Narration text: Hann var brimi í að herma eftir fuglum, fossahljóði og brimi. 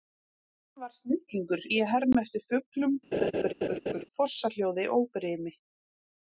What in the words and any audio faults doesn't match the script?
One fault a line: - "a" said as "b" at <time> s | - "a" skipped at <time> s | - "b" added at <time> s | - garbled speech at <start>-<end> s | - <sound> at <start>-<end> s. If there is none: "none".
- "brimi" said as "snillingur" at 0.9 s
- laugh at 3.1-4.0 s